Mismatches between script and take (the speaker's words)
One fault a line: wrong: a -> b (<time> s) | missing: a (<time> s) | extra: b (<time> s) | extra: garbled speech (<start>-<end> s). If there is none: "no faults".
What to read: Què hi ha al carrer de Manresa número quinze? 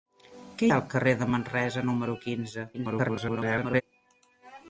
missing: hi (0.7 s)
extra: garbled speech (2.7-3.8 s)